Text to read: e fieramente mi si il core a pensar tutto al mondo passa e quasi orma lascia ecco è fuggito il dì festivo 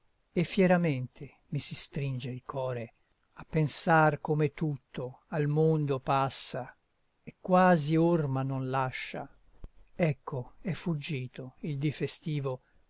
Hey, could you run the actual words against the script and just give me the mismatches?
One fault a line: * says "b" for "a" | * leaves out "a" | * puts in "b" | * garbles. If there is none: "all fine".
* puts in "stringe"
* puts in "come"
* puts in "non"